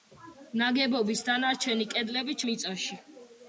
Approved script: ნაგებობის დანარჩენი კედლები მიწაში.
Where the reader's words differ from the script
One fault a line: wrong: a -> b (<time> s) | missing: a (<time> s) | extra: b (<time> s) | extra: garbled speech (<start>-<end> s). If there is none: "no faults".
no faults